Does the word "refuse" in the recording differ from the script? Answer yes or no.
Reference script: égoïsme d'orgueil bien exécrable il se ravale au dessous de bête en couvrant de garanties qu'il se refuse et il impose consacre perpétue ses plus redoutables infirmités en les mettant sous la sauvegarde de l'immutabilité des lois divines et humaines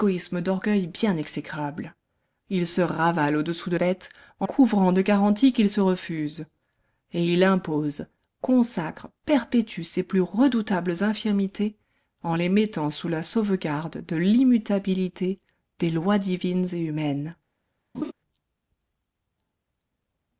no